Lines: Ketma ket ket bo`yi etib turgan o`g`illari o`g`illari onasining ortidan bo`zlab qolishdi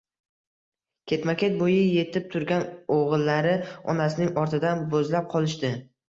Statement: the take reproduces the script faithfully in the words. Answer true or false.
false